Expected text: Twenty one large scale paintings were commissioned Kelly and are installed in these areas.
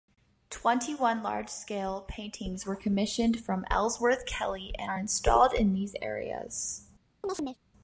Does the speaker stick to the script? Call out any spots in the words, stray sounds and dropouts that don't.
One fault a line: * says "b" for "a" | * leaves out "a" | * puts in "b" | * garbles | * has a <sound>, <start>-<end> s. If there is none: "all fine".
* puts in "from Ellsworth"
* has a chirp, 7.2-7.6 s